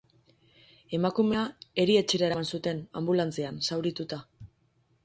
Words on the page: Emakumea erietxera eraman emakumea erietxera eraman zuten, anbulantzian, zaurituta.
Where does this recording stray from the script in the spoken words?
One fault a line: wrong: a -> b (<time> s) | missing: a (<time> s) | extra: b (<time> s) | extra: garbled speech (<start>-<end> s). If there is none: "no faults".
missing: emakumea erietxera eraman (2.5 s)